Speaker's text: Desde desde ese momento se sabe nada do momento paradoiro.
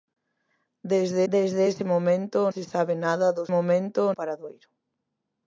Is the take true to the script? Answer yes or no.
yes